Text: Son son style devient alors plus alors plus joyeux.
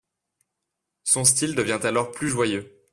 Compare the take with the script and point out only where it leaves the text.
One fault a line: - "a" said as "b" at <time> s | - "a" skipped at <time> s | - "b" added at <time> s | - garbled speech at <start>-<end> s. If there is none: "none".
- "son" skipped at 1.2 s
- "alors plus" skipped at 2.3 s